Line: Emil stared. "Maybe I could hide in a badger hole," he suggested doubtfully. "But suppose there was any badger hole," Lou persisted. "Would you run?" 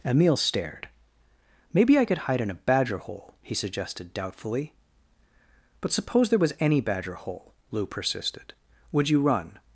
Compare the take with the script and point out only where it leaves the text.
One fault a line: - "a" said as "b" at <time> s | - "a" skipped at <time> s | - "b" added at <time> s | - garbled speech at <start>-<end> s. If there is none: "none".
none